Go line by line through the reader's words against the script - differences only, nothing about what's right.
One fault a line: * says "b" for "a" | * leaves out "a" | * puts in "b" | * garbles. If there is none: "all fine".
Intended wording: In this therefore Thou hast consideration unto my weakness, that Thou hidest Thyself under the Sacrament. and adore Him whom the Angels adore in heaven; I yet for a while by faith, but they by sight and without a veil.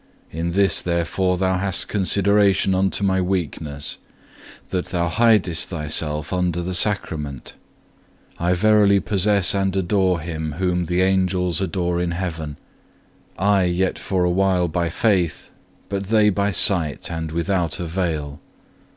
* puts in "I verily possess"